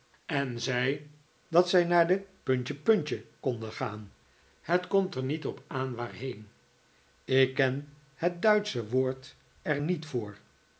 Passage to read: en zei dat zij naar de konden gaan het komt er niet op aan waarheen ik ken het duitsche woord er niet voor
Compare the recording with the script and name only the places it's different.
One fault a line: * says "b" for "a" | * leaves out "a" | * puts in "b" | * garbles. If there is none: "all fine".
all fine